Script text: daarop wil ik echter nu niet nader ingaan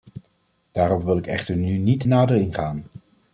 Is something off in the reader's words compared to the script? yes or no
no